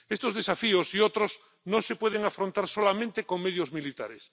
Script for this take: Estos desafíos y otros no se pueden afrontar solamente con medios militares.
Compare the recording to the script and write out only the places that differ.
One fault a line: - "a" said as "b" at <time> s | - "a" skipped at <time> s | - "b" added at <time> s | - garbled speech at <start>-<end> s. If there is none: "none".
none